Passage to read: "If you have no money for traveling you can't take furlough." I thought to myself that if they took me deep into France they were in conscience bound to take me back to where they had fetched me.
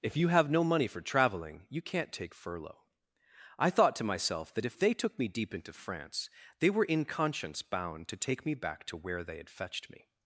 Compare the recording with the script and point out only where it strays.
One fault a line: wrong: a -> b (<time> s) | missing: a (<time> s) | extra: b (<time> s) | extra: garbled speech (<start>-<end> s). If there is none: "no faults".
no faults